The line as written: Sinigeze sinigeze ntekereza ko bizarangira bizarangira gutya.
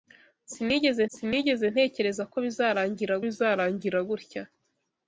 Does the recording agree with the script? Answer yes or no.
yes